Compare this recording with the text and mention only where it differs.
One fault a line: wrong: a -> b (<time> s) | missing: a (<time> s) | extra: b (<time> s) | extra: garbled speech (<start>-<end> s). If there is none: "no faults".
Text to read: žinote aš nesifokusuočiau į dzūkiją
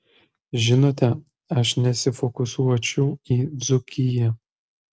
no faults